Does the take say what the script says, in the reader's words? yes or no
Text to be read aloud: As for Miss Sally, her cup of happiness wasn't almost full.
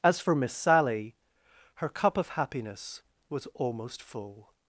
no